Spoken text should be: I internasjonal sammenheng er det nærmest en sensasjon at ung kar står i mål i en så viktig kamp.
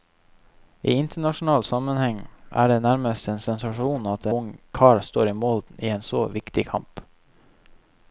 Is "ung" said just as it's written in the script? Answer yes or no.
yes